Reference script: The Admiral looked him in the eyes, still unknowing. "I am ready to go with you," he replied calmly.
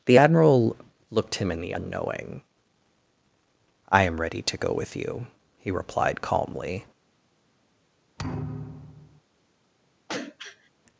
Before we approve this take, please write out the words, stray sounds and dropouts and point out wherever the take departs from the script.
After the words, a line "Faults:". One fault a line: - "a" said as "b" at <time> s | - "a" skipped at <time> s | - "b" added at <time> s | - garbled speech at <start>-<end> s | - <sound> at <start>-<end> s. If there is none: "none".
The Admiral looked him in the unknowing. "I am ready to go with you," he replied calmly.
Faults:
- "eyes still" skipped at 1.7 s
- thud at 8.2-9.2 s
- throat clearing at 10.1-10.7 s